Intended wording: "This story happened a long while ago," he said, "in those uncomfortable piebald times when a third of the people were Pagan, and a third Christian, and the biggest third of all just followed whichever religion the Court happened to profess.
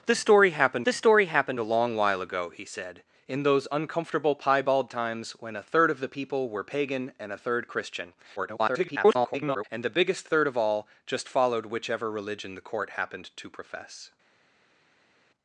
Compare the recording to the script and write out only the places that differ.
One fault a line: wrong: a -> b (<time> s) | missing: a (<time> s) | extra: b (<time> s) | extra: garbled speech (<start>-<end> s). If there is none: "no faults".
extra: this story happened (0.8 s)
extra: garbled speech (8.4-9.6 s)